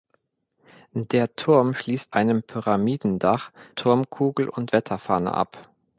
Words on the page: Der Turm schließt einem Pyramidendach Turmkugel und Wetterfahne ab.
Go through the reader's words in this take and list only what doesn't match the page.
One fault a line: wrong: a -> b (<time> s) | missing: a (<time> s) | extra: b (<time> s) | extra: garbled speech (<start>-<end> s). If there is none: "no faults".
no faults